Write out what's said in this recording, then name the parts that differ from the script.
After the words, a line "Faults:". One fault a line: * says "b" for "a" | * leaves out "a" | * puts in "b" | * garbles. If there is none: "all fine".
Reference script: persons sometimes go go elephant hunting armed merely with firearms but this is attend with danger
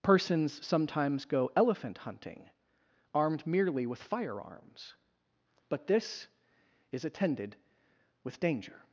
persons sometimes go elephant hunting armed merely with firearms but this is attended with danger
Faults:
* leaves out "go"
* says "attended" for "attend"